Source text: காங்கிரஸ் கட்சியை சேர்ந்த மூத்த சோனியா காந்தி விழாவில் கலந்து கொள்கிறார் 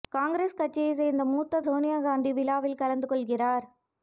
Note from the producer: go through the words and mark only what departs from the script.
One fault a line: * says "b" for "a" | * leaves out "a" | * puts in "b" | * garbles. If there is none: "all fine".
all fine